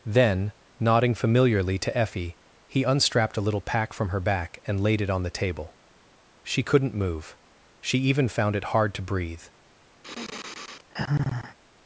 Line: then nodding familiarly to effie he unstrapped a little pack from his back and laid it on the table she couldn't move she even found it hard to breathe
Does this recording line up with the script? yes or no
no